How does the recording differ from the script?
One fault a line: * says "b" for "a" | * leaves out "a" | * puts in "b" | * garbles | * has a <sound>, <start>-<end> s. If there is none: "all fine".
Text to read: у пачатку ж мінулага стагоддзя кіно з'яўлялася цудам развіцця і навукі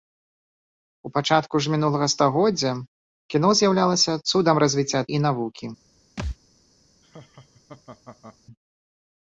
* has a thud, 6.2-6.4 s
* has a laugh, 7.0-8.4 s